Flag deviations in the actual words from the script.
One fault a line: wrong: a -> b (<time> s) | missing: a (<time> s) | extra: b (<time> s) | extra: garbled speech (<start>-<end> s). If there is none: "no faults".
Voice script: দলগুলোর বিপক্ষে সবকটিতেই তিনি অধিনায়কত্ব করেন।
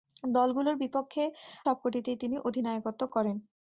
no faults